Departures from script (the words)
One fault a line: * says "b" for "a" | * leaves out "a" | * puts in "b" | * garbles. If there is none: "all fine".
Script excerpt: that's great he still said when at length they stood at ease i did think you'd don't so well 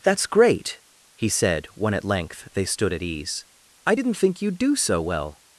* leaves out "still"
* says "didn't" for "did"
* says "do" for "don't"